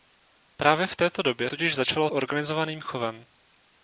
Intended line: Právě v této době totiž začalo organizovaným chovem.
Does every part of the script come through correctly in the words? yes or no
yes